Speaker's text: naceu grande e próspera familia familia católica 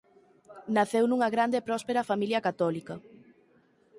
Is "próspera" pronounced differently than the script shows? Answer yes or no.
no